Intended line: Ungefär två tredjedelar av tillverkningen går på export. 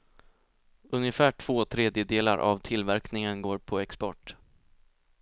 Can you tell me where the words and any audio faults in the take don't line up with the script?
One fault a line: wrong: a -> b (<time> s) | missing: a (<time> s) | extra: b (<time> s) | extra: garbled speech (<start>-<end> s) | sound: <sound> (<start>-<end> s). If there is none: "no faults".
no faults